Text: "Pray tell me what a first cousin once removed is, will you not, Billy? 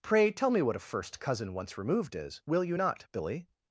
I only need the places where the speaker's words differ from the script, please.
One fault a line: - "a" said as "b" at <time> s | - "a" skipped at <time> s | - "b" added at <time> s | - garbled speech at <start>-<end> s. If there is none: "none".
none